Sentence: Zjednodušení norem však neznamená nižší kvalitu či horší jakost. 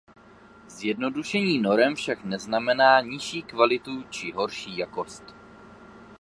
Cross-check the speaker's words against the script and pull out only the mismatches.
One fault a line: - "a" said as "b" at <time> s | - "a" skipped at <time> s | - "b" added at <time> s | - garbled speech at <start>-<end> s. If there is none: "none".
none